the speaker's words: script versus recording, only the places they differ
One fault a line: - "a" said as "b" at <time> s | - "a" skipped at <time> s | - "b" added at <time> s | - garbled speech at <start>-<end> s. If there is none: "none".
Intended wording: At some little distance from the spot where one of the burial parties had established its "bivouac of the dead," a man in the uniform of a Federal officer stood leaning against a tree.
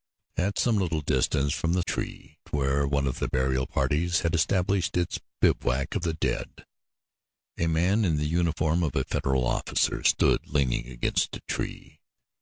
- "spot" said as "tree" at 1.8 s